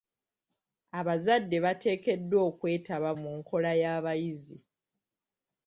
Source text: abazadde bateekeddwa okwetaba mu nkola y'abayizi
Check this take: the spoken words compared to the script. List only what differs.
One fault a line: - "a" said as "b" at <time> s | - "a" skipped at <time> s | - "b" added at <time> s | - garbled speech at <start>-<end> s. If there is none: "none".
none